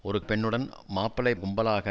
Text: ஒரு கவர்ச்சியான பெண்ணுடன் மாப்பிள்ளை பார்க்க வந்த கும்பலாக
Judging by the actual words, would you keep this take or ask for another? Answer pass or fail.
fail